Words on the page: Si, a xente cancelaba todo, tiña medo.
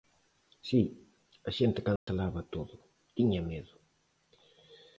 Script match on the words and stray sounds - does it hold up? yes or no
no